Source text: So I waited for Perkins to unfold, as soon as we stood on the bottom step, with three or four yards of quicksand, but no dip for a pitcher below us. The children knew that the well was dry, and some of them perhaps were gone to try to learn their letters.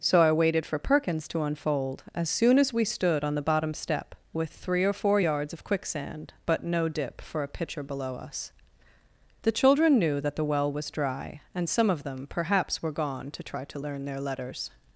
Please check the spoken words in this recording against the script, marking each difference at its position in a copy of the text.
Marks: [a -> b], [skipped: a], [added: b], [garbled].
So I waited for Perkins to unfold, as soon as we stood on the bottom step, with three or four yards of quicksand, but no dip for a pitcher below us. The children knew that the well was dry, and some of them perhaps were gone to try to learn their letters.